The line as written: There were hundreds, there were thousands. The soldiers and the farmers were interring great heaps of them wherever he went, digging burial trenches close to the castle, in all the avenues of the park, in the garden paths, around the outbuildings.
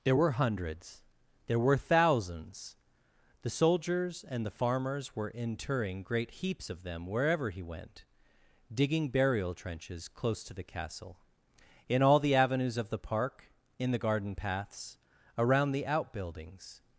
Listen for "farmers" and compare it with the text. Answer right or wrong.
right